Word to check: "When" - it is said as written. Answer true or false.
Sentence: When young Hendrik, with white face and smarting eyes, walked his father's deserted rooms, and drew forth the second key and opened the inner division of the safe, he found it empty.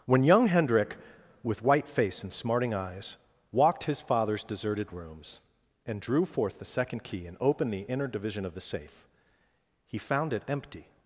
true